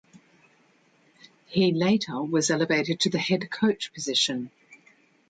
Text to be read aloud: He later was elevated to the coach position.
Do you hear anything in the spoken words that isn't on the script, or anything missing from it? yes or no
yes